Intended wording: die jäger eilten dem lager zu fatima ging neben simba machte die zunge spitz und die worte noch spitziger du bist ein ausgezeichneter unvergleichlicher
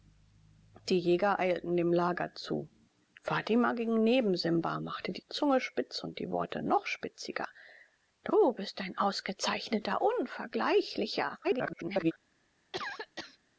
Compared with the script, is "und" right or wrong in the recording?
right